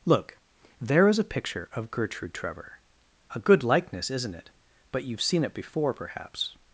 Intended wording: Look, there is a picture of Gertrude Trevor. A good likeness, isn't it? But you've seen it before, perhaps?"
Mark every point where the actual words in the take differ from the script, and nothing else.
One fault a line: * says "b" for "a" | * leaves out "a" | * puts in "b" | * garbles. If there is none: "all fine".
all fine